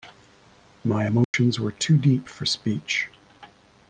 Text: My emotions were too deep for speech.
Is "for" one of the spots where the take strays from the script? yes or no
no